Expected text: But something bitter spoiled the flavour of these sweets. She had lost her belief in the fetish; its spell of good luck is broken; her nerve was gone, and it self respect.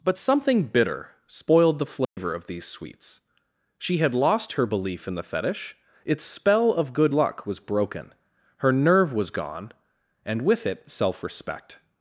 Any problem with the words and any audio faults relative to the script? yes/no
yes